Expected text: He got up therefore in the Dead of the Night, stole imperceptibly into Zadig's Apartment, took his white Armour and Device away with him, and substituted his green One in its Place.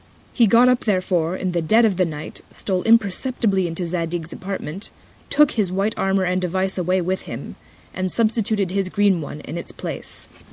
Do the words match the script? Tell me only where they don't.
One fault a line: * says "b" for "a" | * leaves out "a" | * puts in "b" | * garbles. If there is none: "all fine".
all fine